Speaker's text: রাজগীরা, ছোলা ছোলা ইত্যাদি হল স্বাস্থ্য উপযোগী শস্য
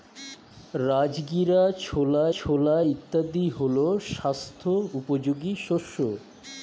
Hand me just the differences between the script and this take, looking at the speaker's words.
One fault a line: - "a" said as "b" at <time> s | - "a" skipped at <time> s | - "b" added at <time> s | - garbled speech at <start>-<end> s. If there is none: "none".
none